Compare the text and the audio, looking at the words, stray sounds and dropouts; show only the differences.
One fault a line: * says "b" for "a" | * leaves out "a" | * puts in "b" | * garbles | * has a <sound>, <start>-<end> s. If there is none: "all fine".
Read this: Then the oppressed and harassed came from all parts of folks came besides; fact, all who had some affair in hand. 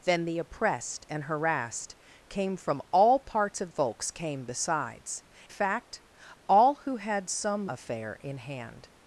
all fine